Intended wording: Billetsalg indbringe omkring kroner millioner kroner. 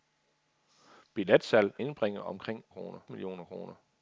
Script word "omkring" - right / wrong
right